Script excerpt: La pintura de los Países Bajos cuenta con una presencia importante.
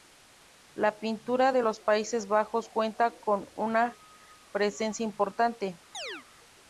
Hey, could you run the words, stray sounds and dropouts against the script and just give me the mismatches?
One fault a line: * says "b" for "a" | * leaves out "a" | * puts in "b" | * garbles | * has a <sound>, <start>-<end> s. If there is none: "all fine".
* has a chirp, 5.9-6.3 s